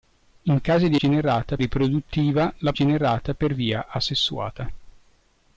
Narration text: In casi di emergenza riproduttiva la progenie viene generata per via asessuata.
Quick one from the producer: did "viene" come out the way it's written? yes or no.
no